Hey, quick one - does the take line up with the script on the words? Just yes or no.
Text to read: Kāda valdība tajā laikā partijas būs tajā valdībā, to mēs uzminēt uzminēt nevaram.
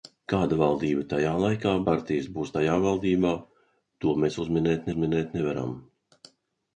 yes